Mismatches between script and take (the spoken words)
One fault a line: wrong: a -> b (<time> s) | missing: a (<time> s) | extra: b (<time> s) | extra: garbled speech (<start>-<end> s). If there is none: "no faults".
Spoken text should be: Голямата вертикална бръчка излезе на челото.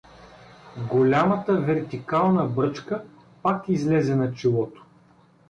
extra: пак (3.4 s)